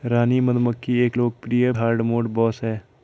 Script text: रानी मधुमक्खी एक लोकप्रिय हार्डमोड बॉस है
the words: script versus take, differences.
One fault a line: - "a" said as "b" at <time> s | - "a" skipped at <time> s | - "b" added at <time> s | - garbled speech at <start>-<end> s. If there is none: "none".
none